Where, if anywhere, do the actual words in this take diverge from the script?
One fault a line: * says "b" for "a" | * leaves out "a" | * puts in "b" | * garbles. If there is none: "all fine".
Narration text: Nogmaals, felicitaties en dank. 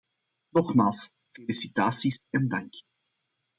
all fine